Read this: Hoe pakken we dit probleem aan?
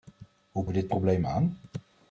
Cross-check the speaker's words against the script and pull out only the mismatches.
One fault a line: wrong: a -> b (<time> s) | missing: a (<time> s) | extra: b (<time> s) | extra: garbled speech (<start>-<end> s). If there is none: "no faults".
missing: pakken (0.7 s)